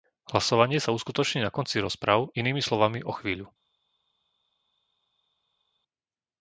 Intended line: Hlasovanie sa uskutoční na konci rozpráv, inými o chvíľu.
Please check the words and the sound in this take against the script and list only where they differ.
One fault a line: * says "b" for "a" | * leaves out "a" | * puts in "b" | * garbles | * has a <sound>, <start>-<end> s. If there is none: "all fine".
* puts in "slovami"